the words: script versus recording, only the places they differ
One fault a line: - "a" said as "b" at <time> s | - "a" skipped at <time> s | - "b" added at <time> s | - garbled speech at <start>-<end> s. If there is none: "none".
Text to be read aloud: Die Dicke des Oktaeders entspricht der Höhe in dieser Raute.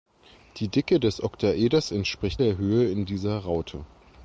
none